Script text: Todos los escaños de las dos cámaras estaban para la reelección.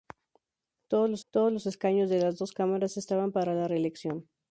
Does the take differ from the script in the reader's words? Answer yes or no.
yes